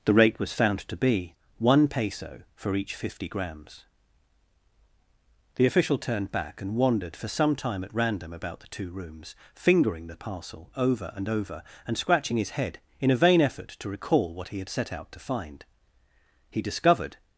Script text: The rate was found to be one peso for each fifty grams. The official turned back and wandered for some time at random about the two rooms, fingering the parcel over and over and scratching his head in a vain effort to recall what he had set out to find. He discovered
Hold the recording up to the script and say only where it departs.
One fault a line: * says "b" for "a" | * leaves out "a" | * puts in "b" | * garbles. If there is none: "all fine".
all fine